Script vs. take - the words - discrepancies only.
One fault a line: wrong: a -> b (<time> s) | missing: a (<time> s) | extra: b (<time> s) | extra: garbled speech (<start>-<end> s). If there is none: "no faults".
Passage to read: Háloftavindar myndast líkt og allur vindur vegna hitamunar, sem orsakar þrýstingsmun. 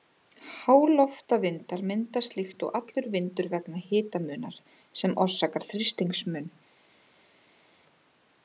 no faults